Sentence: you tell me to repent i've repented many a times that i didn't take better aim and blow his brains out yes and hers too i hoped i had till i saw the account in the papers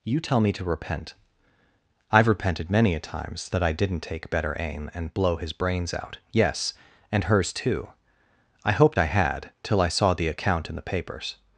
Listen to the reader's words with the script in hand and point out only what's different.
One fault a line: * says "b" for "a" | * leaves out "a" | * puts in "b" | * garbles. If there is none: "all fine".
all fine